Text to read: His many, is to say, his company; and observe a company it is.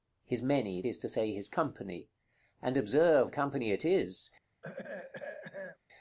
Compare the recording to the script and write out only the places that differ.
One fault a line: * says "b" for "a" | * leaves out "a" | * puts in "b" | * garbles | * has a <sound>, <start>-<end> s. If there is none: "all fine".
* has a throat clearing, 4.6-5.8 s